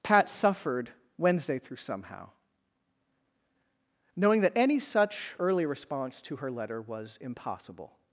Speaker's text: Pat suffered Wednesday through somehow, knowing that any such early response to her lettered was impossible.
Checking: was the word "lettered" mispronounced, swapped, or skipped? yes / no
yes